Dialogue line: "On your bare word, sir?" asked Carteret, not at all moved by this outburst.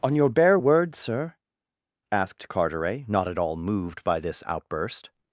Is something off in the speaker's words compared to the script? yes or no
no